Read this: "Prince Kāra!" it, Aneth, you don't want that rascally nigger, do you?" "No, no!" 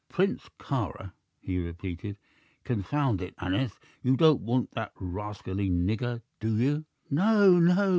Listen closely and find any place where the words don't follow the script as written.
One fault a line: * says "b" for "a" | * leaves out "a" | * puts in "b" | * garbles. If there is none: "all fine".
* puts in "he repeated Confound"